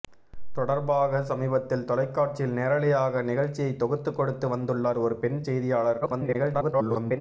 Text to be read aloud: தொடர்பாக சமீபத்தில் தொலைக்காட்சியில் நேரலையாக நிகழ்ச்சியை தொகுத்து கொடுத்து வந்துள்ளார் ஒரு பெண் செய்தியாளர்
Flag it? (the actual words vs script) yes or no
yes